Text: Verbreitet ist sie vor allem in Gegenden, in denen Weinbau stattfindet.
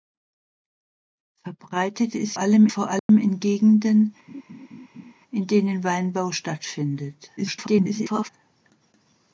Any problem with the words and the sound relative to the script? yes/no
yes